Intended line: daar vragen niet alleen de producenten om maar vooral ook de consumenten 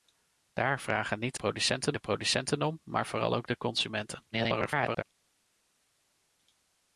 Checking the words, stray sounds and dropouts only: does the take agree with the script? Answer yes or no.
no